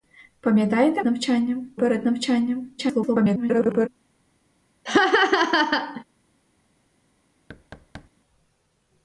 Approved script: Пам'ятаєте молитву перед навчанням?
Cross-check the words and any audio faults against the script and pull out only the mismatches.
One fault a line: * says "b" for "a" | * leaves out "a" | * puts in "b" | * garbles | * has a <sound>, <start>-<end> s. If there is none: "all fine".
* says "навчанням" for "молитву"
* garbles
* has a laugh, 4.9-6.0 s
* has a thud, 7.5-8.1 s